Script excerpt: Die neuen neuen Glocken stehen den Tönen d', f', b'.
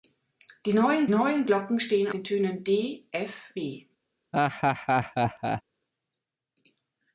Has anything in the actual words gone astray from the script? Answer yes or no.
no